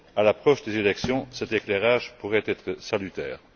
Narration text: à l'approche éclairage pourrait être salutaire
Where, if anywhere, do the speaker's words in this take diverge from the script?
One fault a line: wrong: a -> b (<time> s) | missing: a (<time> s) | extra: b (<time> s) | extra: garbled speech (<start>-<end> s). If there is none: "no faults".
extra: des élections cet (0.6 s)